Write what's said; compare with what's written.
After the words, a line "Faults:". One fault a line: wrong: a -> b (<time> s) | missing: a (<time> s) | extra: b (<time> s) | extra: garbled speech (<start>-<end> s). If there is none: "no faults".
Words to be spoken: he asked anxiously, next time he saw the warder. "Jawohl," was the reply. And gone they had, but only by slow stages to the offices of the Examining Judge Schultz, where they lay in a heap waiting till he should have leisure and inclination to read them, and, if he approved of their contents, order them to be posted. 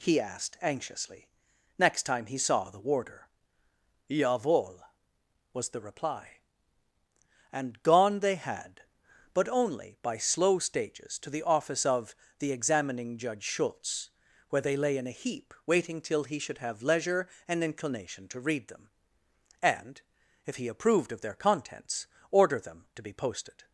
he asked anxiously, next time he saw the warder. "Jawohl," was the reply. And gone they had, but only by slow stages to the office of the Examining Judge Schultz, where they lay in a heap waiting till he should have leisure and inclination to read them, and, if he approved of their contents, order them to be posted.
Faults:
wrong: offices -> office (11.4 s)